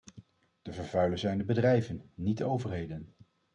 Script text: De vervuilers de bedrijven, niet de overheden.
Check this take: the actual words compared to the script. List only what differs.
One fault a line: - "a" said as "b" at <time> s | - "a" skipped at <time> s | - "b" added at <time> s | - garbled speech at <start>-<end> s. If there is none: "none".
- "zijn" added at 1.2 s